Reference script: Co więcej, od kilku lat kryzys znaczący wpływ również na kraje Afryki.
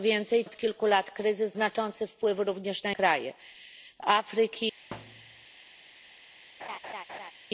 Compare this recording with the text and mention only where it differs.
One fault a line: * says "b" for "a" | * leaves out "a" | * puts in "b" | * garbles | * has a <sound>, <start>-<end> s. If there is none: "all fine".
* has a thud, 4.9-5.5 s
* has a laugh, 6.6-7.3 s